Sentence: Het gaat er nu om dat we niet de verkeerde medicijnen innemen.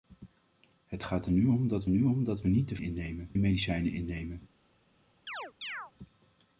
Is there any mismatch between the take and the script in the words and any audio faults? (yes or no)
yes